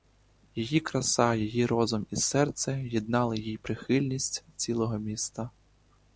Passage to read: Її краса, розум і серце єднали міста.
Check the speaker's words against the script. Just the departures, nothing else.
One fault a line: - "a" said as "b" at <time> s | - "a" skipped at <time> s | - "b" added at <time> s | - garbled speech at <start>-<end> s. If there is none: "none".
- "її" added at 1.4 s
- "їй прихильність цілого" added at 3.4 s